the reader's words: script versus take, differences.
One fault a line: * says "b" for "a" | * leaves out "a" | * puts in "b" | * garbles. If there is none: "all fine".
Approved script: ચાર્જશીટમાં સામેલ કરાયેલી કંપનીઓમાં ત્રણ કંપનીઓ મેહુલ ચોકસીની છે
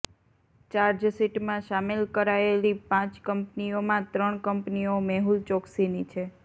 * puts in "પાંચ"